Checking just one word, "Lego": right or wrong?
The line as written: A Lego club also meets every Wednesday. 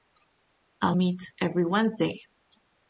wrong